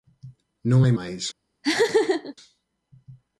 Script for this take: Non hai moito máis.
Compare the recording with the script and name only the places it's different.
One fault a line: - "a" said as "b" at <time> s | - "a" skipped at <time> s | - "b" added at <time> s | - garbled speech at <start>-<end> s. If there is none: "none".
- "moito" skipped at 0.9 s